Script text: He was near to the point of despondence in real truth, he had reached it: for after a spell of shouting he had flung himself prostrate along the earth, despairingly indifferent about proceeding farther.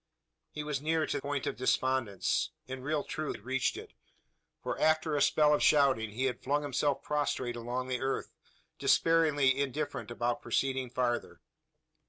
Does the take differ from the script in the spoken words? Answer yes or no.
yes